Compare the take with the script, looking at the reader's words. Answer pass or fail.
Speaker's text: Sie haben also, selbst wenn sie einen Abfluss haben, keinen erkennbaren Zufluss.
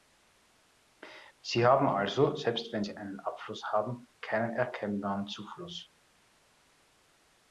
pass